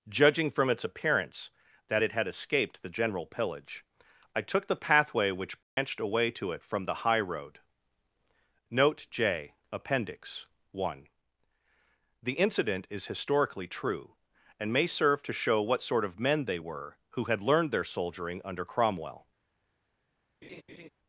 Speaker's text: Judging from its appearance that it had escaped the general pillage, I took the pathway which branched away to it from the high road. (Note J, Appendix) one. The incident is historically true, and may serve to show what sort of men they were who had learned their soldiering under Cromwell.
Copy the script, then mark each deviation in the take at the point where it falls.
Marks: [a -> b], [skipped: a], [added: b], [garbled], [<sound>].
Judging from its appearance that it had escaped the general pillage, I took the pathway which branched [dropout] away to it from the high road. (Note J, Appendix) one. The incident is historically true, and may serve to show what sort of men they were who had learned their soldiering under Cromwell. [laugh]